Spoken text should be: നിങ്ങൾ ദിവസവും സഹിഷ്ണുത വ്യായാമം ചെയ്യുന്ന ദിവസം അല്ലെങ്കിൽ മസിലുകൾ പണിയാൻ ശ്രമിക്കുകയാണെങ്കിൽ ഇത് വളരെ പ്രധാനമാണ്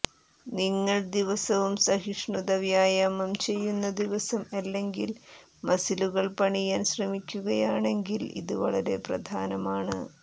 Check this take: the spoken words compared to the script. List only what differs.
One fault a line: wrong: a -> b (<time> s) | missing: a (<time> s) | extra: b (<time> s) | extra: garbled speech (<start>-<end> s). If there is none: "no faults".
no faults